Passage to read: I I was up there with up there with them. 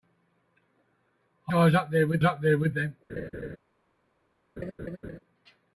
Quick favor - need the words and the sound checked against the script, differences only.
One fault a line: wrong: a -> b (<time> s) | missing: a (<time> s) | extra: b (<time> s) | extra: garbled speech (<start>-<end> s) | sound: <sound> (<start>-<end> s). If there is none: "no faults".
sound: laugh (3.1-3.6 s)
sound: laugh (4.6-5.2 s)